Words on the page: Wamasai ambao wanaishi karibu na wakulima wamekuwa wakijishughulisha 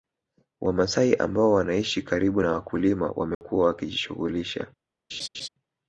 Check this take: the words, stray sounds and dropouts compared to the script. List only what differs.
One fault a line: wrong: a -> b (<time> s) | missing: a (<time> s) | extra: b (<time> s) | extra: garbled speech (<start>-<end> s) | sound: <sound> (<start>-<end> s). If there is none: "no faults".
sound: dropout (3.3-3.4 s)
sound: laugh (5.1-5.5 s)